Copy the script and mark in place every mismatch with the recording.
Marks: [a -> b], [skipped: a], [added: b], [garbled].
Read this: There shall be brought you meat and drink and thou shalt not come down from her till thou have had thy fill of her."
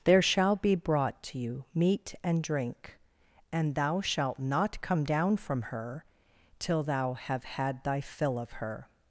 There shall be brought [added: to] you meat and drink and thou shalt not come down from her till thou have had thy fill of her."